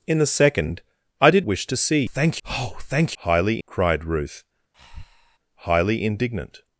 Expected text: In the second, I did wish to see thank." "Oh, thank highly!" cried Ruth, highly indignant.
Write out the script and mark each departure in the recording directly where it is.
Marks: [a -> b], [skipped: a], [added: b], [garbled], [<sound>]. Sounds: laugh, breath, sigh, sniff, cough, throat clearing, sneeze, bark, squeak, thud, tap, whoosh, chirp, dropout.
In the second, I did wish to see thank." "Oh, thank highly!" cried Ruth, [breath] highly indignant.